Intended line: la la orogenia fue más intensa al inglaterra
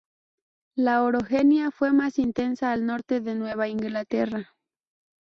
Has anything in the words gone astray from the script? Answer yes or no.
yes